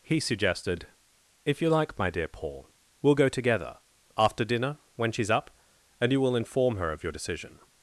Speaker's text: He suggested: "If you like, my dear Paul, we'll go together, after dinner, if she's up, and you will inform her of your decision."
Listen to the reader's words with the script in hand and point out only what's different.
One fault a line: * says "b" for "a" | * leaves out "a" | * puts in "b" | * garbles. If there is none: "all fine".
* says "when" for "if"